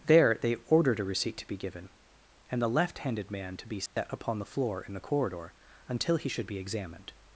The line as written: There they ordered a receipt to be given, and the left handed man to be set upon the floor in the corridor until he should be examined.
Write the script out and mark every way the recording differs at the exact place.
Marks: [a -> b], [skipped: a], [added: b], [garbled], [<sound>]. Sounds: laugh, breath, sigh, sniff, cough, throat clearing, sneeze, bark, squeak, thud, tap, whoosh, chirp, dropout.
There they ordered a receipt to be given, and the left handed man to be set [dropout] upon the floor in the corridor until he should be examined.